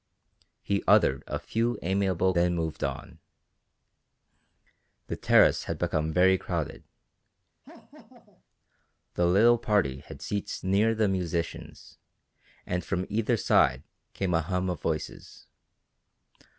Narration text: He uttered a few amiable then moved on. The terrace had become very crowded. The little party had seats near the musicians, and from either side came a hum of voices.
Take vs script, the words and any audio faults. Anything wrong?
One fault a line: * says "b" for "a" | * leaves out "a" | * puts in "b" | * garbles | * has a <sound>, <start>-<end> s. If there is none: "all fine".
* has a laugh, 7.6-8.4 s